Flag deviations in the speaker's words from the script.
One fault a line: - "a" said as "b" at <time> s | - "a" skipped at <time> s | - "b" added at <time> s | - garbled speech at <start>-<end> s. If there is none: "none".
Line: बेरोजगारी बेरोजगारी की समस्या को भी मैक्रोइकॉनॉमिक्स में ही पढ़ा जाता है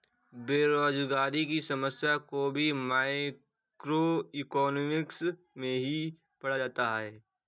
- "बेरोजगारी" skipped at 1.4 s